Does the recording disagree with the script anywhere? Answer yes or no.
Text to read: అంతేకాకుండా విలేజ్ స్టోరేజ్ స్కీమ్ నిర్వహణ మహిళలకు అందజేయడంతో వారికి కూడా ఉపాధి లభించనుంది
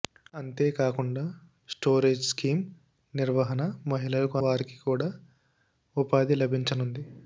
yes